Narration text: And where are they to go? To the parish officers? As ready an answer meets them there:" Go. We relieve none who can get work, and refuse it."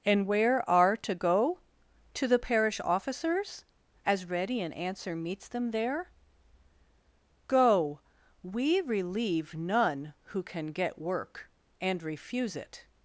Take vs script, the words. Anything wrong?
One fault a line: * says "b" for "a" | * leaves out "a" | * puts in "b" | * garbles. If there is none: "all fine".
* leaves out "they"